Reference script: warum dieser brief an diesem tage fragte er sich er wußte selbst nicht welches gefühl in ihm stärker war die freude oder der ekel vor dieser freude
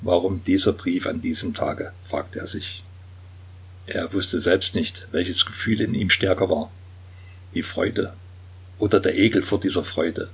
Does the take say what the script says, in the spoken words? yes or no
yes